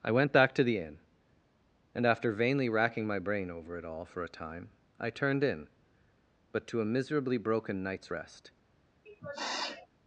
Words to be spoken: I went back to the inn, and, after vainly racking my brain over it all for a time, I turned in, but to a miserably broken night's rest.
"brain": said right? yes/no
yes